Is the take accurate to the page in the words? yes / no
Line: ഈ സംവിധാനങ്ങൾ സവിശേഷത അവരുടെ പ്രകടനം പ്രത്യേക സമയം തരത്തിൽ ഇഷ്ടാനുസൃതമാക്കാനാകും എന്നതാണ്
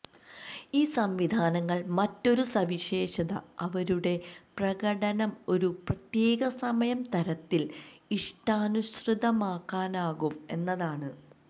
no